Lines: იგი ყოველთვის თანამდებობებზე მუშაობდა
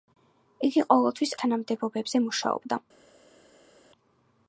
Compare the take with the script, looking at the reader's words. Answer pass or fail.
pass